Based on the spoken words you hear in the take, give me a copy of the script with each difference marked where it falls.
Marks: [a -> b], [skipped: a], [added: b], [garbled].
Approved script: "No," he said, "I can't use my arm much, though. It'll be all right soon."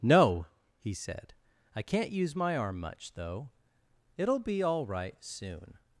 "No," he said, "I can't use my arm much, though. It'll be all right soon."